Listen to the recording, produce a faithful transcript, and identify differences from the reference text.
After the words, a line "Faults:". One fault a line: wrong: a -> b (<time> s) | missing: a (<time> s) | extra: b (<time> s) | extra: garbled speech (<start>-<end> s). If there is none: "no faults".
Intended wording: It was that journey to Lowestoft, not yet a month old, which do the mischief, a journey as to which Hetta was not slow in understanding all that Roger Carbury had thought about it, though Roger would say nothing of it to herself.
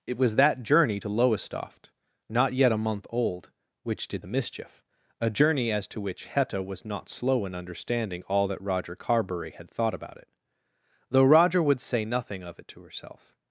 It was that journey to Lowestoft, not yet a month old, which did the mischief, a journey as to which Hetta was not slow in understanding all that Roger Carbury had thought about it, though Roger would say nothing of it to herself.
Faults:
wrong: do -> did (4.1 s)